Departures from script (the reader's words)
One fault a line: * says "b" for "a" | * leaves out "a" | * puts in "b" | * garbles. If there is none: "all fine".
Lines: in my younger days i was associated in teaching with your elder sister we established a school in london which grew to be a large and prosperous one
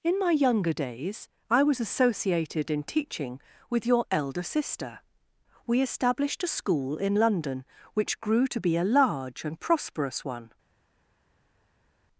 all fine